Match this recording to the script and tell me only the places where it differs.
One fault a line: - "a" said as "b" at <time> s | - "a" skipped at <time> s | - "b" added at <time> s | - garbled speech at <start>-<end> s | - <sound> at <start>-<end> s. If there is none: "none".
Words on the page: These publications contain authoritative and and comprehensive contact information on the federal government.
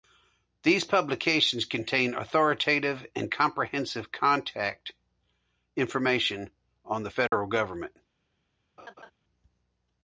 - "and" skipped at 3.3 s
- dropout at 7.3-7.3 s
- laugh at 8.8-9.1 s